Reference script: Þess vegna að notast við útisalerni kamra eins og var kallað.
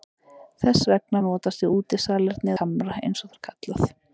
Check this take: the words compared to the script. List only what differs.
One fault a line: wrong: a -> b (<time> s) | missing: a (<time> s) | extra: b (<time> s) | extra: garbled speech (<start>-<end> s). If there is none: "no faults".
no faults